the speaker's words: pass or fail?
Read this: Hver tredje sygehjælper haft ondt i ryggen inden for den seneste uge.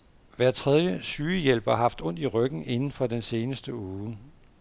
pass